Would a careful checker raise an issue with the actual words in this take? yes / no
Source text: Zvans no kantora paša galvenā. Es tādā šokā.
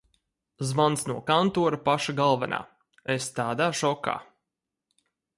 no